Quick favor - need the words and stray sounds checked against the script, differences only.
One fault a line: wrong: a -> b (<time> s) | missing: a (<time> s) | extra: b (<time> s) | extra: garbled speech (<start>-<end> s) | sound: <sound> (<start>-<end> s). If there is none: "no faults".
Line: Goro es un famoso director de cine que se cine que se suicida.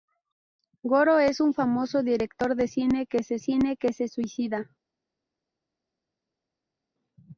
no faults